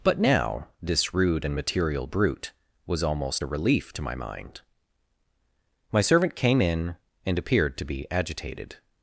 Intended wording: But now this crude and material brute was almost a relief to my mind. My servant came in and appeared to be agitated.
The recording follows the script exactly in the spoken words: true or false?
false